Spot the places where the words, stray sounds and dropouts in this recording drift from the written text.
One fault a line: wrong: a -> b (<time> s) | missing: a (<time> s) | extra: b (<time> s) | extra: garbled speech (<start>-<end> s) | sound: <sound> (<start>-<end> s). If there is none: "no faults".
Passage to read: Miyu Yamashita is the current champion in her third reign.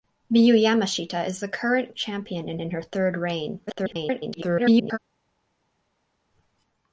extra: in (2.6 s)
extra: garbled speech (3.7-5.0 s)